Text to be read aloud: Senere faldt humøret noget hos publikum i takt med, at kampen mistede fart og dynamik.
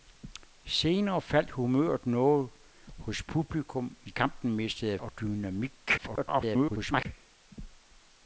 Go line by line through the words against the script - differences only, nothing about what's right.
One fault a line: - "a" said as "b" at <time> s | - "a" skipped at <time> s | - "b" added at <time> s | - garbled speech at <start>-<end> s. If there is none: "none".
- "takt med at" skipped at 4.1 s
- "fart" skipped at 5.0 s
- garbled speech at 6.0-7.1 s